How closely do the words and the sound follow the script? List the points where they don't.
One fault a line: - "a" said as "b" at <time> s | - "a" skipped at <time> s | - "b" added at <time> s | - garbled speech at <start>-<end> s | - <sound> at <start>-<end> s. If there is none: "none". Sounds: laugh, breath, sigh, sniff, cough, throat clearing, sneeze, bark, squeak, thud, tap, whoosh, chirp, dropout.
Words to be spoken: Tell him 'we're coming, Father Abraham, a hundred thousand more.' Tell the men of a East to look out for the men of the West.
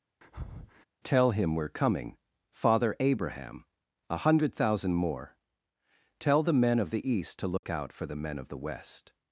- breath at 0.2-0.8 s
- "a" said as "the" at 6.9 s
- dropout at 7.6-7.6 s